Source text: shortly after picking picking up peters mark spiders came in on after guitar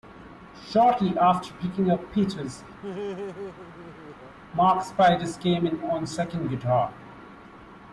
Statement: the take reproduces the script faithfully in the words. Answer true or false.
false